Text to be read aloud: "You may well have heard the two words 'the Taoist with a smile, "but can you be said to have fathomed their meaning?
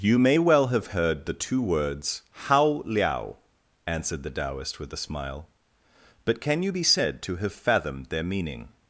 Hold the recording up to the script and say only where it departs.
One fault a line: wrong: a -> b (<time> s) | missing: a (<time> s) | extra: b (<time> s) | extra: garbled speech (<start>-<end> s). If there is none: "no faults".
extra: hao liao answered (2.3 s)